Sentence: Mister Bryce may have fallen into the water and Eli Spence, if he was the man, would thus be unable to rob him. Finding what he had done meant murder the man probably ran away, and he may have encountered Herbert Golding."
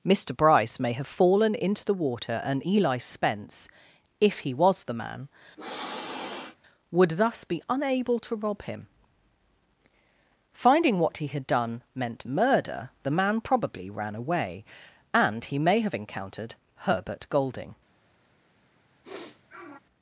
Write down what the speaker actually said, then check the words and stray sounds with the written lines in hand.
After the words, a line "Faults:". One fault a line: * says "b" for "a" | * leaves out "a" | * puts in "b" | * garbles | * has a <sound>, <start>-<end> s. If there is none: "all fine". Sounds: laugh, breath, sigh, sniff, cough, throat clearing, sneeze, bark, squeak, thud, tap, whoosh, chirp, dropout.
Mister Bryce may have fallen into the water and Eli Spence, if he was the man, would thus be unable to rob him. Finding what he had done meant murder the man probably ran away, and he may have encountered Herbert Golding."
Faults:
* has a sniff, 5.6-6.6 s
* has a sniff, 19.0-19.8 s